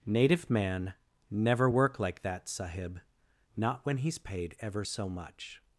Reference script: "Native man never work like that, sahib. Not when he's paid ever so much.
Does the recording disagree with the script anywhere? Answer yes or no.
no